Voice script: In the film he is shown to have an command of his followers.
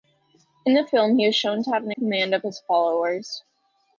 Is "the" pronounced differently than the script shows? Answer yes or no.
no